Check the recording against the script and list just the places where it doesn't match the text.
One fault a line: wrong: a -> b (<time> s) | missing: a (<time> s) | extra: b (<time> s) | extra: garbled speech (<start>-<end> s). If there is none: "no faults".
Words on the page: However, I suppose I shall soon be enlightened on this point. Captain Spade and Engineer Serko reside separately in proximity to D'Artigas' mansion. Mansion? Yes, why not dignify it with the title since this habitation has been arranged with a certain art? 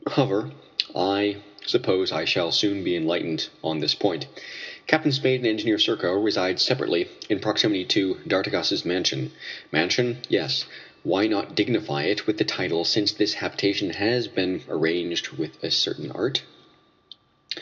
no faults